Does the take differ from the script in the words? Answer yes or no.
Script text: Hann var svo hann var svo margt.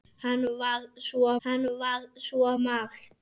no